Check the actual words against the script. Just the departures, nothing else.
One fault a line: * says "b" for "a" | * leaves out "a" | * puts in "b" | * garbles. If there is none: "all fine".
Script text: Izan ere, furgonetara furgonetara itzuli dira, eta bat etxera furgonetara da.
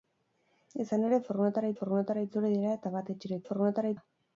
all fine